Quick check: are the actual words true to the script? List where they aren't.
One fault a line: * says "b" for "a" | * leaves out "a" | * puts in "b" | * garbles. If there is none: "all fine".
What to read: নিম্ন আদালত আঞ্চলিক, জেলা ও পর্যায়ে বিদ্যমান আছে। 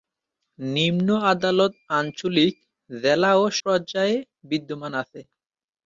all fine